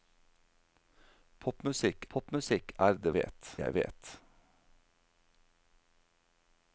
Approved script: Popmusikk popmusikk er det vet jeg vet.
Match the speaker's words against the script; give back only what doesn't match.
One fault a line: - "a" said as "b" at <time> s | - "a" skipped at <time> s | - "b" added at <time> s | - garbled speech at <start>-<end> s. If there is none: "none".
none